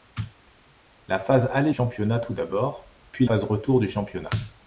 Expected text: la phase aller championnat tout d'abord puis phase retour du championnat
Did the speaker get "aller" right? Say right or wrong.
right